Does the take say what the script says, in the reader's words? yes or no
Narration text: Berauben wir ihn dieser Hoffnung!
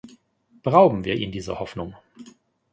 yes